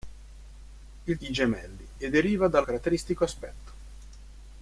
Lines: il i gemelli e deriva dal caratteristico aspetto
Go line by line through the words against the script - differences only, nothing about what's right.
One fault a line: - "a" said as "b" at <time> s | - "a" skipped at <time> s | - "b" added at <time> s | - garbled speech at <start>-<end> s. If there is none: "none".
none